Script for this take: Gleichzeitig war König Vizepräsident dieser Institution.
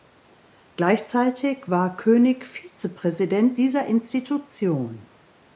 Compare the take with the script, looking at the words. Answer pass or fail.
pass